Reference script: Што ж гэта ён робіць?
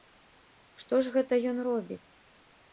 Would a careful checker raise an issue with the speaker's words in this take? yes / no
no